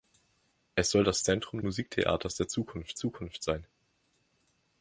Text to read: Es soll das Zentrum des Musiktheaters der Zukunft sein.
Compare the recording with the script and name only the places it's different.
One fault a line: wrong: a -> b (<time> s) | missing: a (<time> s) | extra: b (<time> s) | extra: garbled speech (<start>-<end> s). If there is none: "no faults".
missing: des (1.6 s)
extra: Zukunft (3.0 s)